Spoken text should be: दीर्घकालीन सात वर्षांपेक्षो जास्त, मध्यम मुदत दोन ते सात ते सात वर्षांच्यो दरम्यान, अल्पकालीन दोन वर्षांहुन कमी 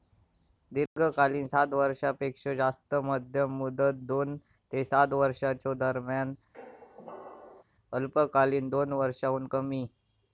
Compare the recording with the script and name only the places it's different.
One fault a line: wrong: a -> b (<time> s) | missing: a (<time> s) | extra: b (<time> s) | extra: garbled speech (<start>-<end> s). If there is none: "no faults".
missing: ते सात (5.1 s)